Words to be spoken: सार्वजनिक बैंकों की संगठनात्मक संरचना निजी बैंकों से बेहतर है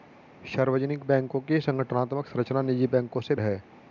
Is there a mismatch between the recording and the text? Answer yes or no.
yes